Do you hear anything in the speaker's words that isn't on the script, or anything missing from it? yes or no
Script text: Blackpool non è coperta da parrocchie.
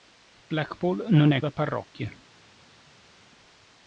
yes